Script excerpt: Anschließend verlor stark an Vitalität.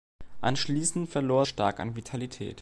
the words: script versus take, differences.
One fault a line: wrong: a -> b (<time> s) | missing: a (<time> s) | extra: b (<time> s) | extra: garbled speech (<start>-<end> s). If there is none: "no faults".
no faults